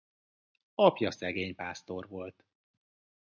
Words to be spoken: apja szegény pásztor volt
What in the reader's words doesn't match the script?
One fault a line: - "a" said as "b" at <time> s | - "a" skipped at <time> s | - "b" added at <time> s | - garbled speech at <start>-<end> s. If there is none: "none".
none